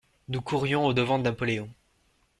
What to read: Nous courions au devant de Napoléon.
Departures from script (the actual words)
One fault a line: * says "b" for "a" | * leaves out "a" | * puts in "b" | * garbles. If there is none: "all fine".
all fine